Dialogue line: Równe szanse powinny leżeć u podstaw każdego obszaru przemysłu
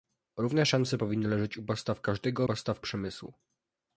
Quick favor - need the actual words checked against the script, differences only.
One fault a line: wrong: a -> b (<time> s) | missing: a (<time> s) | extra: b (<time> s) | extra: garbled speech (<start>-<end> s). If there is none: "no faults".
wrong: obszaru -> podstaw (2.4 s)